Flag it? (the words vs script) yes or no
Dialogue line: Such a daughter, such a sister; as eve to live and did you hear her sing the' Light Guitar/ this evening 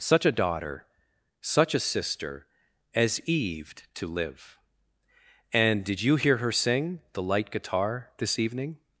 no